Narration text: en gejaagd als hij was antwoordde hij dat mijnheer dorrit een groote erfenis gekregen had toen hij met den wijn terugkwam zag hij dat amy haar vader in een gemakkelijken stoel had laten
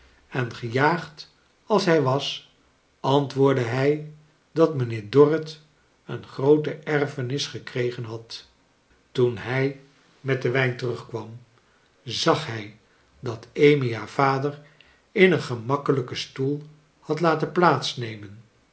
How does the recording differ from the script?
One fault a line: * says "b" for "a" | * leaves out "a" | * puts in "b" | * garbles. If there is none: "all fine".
all fine